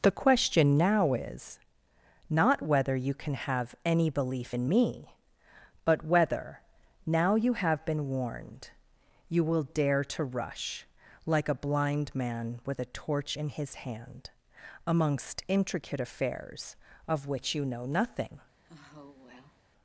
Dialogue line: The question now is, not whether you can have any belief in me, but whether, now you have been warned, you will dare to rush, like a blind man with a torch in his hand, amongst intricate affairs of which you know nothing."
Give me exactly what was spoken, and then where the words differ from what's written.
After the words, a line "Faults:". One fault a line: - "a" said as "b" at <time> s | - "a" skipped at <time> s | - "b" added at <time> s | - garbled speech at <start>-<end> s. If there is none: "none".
The question now is, not whether you can have any belief in me, but whether, now you have been warned, you will dare to rush, like a blind man with a torch in his hand, amongst intricate affairs of which you know nothing."
Faults:
none